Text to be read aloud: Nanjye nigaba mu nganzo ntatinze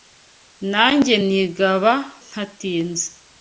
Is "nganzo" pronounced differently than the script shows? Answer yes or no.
yes